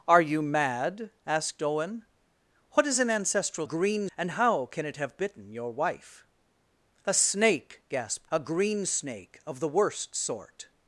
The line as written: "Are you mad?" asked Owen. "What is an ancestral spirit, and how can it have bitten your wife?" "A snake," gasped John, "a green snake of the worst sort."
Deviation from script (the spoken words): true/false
true